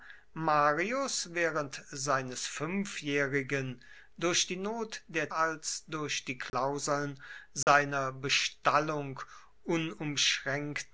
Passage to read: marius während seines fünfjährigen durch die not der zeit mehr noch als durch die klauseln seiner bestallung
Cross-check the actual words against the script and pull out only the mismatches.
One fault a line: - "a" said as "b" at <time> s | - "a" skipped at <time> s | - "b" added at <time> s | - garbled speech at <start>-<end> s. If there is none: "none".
- "zeit mehr noch" skipped at 5.3 s